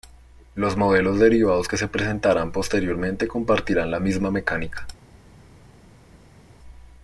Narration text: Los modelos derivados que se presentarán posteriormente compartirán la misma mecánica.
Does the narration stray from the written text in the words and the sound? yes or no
no